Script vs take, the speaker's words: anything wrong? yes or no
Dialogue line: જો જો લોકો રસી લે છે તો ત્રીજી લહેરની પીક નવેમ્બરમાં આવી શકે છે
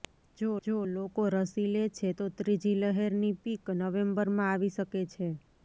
no